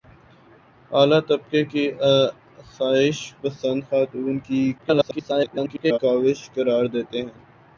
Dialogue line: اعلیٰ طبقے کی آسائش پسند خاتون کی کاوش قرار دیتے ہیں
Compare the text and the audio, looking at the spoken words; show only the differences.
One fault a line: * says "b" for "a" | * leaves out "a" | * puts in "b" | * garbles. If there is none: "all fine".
* garbles